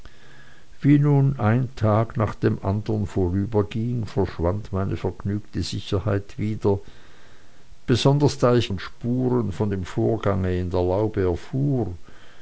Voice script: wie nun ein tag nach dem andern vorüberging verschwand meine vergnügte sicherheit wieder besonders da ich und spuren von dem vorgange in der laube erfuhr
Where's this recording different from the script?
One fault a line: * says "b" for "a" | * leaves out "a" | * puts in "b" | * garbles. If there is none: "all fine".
all fine